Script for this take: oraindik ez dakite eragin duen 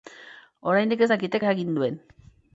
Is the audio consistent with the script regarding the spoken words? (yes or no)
yes